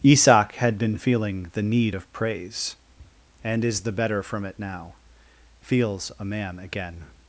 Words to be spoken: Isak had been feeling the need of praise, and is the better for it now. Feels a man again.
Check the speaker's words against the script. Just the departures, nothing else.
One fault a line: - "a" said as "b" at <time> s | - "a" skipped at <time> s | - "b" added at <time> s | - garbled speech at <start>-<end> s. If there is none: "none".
- "for" said as "from" at 4.2 s